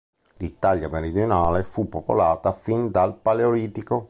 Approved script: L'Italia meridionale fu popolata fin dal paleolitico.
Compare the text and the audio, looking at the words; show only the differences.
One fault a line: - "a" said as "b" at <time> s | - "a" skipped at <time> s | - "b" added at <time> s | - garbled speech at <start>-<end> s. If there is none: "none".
none